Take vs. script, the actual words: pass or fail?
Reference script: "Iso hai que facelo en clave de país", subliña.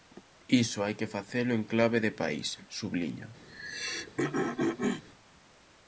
pass